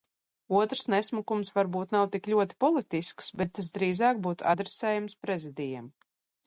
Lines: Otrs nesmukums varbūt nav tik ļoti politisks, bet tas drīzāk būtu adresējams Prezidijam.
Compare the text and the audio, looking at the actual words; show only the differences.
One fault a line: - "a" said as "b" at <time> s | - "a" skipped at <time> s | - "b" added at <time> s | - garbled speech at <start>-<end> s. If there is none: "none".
none